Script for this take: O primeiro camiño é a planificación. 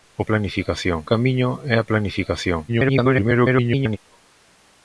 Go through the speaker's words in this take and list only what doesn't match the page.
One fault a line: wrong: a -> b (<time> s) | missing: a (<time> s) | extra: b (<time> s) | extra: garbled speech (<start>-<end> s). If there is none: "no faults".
wrong: primeiro -> planificación (0.3 s)
extra: garbled speech (2.7-4.0 s)